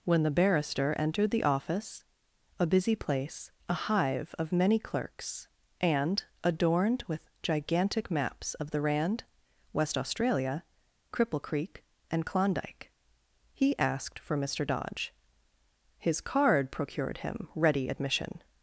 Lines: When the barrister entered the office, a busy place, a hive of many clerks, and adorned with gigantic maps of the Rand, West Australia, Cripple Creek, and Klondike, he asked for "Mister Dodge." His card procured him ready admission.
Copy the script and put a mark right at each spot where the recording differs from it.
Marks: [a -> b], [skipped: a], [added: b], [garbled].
When the barrister entered the office, a busy place, a hive of many clerks, and adorned with gigantic maps of the Rand, West Australia, Cripple Creek, and Klondike, he asked for "Mister Dodge." His card procured him ready admission.